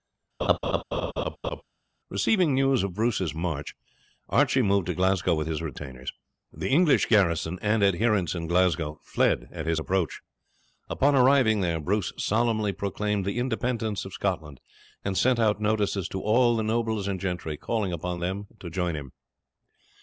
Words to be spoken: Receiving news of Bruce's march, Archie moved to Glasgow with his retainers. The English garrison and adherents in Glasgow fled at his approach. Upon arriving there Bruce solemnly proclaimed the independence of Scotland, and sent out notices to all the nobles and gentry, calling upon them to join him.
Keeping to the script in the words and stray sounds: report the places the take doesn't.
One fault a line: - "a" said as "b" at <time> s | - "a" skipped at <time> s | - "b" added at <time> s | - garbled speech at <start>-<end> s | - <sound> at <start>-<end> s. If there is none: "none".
- laugh at 0.4-1.6 s